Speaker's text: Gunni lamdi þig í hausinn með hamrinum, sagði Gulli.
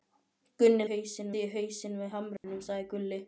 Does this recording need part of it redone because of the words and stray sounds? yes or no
yes